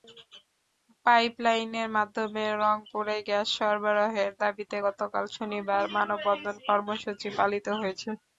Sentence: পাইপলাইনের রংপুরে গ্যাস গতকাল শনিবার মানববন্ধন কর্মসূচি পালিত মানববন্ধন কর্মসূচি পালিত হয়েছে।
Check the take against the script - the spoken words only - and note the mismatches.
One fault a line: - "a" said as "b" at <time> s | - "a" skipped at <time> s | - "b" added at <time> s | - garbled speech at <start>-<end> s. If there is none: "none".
- "মাধ্যমে" added at 2.0 s
- "সরবরাহের দাবিতে" added at 3.6 s
- "মানববন্ধন কর্মসূচি পালিত" skipped at 7.7 s